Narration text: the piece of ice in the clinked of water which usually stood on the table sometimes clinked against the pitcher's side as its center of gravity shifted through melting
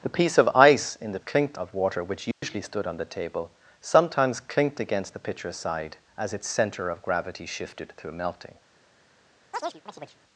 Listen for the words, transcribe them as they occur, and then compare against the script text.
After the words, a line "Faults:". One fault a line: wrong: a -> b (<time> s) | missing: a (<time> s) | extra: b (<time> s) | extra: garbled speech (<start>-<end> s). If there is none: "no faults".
the piece of ice in the clinked of water which usually stood on the table sometimes clinked against the pitcher's side as its center of gravity shifted through melting
Faults:
no faults